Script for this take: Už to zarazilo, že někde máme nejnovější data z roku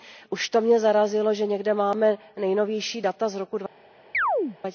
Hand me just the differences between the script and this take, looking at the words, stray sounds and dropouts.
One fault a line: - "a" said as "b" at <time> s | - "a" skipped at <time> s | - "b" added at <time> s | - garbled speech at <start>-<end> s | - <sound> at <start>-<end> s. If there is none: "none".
- "mě" added at 0.6 s
- chirp at 4.1-4.6 s